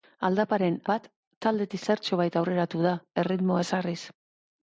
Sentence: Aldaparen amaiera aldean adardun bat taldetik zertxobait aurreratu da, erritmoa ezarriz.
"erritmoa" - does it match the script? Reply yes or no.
yes